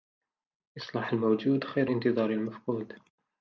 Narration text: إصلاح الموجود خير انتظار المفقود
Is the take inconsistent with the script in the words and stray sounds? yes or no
no